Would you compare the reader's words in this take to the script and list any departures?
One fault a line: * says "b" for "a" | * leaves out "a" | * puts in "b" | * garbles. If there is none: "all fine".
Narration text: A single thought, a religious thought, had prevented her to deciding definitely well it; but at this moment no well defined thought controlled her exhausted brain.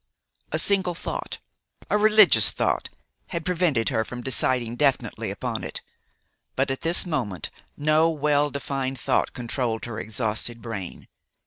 * says "from" for "to"
* says "upon" for "well"